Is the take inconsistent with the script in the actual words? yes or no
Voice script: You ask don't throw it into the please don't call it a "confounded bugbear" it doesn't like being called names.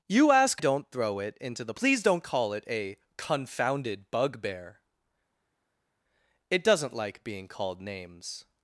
no